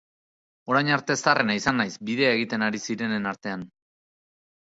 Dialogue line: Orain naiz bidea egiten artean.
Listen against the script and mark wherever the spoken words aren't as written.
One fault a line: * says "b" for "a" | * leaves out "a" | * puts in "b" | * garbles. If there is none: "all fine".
* puts in "arte zaharrena izan"
* puts in "ari zirenen"